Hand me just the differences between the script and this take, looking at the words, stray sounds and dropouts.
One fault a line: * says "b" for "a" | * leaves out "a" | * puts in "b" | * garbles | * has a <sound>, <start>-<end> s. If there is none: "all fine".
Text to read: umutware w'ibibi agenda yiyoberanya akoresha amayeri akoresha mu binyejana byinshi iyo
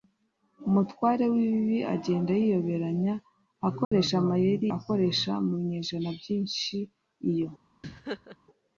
* has a dropout, 3.8-3.9 s
* has a laugh, 7.8-8.4 s